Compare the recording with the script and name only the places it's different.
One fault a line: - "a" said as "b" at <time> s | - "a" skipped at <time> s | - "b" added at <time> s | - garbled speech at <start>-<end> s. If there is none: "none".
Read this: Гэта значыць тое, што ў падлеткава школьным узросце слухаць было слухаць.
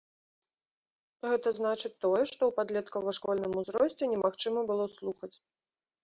- "слухаць" said as "немагчыма" at 4.1 s